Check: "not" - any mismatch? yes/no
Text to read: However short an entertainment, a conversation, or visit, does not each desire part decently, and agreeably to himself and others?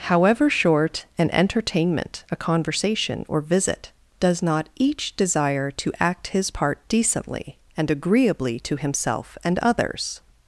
no